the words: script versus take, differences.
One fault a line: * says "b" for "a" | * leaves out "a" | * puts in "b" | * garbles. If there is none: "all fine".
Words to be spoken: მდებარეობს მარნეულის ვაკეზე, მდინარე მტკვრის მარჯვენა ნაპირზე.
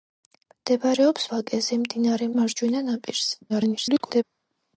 * leaves out "მარნეულის"
* leaves out "მტკვრის"
* garbles